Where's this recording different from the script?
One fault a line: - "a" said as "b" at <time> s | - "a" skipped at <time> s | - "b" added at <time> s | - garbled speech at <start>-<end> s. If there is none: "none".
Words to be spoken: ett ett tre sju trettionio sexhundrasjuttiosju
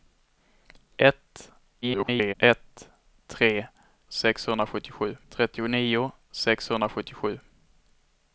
- garbled speech at 1.8-2.3 s
- "sju" said as "sexhundrasjuttiosju" at 4.1 s